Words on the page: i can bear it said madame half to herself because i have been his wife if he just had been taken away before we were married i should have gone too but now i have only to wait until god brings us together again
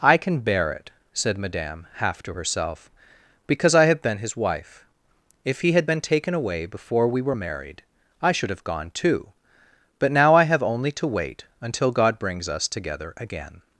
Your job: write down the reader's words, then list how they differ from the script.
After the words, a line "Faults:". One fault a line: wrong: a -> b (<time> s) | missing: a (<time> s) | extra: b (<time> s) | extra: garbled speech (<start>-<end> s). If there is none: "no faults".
i can bear it said madame half to herself because i have been his wife if he had been taken away before we were married i should have gone too but now i have only to wait until god brings us together again
Faults:
missing: just (5.7 s)